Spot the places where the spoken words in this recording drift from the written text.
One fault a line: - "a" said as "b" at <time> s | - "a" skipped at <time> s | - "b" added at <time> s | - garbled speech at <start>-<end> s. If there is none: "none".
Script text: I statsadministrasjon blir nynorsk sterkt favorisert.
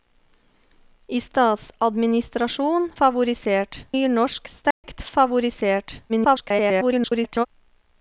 - "blir" said as "favorisert" at 3.0 s
- garbled speech at 6.1-7.5 s